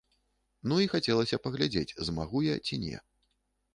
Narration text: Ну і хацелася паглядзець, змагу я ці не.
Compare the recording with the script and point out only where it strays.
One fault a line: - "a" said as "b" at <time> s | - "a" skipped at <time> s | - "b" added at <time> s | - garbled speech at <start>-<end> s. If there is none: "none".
none